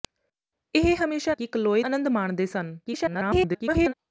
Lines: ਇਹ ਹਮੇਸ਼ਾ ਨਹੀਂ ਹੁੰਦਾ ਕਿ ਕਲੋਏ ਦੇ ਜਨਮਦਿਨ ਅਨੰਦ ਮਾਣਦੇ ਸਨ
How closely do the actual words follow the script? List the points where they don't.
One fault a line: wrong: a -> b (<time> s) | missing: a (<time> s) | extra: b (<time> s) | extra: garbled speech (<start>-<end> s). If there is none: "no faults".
missing: ਨਹੀਂ ਹੁੰਦਾ (1.3 s)
missing: ਦੇ ਜਨਮਦਿਨ (1.8 s)
extra: garbled speech (2.8-3.9 s)